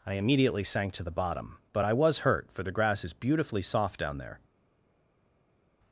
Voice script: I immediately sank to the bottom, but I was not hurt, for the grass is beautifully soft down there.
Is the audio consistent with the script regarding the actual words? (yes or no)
no